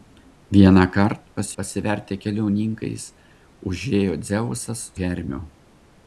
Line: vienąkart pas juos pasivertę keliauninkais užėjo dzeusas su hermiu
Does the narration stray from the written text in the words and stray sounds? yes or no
yes